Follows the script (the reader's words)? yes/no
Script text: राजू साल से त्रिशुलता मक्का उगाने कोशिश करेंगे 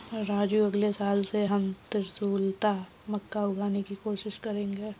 no